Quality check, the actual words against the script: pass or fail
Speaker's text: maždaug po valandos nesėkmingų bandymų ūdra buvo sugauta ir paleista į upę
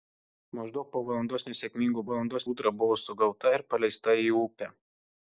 fail